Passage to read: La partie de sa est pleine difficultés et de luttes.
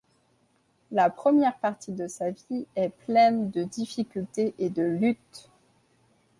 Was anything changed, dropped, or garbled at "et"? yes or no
no